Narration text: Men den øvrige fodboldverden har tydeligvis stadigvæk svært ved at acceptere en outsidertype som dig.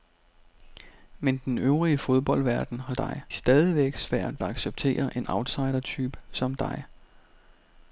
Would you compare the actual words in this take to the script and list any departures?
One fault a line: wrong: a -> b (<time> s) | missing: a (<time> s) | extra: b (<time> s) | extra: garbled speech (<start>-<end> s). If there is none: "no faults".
wrong: tydeligvis -> dig (2.9 s)
missing: ved at (4.4 s)